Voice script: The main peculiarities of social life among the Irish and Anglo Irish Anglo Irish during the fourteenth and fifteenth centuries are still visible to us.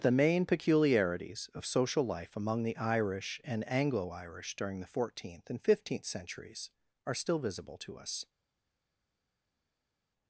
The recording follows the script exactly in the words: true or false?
false